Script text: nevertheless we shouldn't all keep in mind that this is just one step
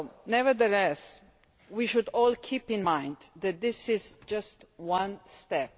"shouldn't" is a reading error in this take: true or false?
true